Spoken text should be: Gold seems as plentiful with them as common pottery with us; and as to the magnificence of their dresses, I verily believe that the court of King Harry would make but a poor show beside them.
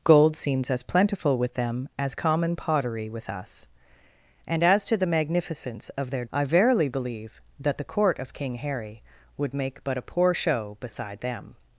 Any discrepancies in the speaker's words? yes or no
yes